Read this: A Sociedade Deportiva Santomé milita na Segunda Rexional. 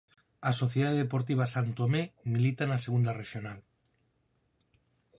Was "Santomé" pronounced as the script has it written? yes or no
yes